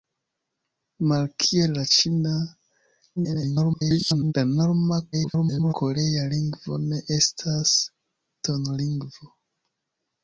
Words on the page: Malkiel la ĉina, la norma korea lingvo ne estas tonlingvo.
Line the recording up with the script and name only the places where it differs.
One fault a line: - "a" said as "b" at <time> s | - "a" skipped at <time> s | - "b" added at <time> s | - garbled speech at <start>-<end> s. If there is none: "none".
- garbled speech at 3.2-4.3 s
- garbled speech at 5.1-5.7 s